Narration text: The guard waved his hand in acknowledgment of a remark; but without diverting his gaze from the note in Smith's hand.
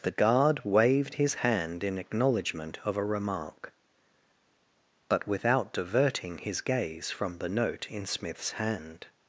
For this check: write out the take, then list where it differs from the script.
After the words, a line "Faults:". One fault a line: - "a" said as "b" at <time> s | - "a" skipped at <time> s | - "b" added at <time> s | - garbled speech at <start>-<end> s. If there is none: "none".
The guard waved his hand in acknowledgment of a remark; but without diverting his gaze from the note in Smith's hand.
Faults:
none